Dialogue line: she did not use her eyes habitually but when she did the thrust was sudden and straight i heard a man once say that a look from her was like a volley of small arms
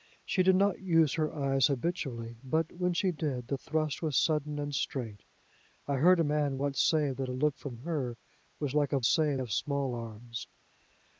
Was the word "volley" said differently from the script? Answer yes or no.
yes